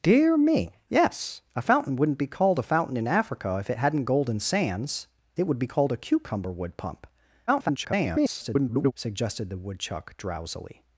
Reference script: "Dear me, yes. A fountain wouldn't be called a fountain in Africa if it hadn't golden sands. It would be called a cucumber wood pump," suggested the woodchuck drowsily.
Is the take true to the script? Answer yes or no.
no